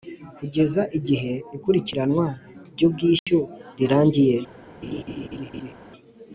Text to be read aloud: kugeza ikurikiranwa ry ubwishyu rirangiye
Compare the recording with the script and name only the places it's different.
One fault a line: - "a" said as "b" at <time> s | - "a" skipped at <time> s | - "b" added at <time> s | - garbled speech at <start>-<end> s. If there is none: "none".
- "igihe" added at 1.0 s